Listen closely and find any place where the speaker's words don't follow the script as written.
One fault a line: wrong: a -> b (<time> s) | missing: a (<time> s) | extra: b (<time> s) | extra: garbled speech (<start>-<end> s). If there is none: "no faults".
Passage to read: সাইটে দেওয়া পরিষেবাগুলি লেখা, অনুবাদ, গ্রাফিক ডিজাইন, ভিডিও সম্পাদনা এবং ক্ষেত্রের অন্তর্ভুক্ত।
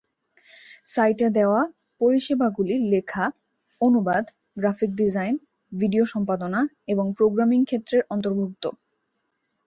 extra: প্রোগ্রামিং (7.2 s)